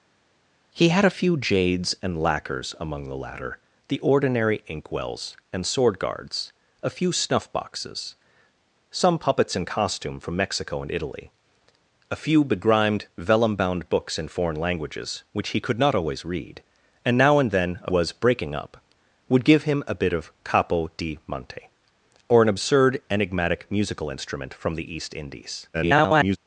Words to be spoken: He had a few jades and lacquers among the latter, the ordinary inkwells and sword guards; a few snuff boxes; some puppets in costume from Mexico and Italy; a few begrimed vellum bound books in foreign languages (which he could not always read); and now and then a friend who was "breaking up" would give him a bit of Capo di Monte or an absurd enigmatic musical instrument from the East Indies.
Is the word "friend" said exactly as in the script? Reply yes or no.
no